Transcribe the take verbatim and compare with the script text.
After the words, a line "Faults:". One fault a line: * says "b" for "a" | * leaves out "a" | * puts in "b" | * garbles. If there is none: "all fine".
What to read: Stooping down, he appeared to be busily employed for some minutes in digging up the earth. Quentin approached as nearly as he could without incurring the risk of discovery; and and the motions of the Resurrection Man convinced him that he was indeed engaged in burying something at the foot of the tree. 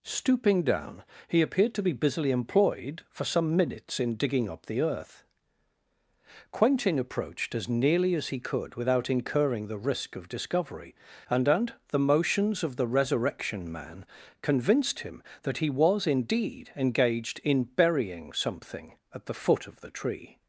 Stooping down, he appeared to be busily employed for some minutes in digging up the earth. Quentin approached as nearly as he could without incurring the risk of discovery; and and the motions of the Resurrection Man convinced him that he was indeed engaged in burying something at the foot of the tree.
Faults:
all fine